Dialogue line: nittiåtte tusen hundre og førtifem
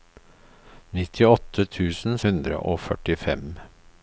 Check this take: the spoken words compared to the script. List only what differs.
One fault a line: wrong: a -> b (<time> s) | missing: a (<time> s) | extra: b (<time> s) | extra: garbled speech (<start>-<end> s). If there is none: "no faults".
no faults